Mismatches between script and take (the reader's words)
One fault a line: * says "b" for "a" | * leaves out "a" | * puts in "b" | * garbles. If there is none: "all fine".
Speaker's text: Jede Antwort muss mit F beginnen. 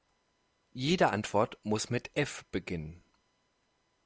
all fine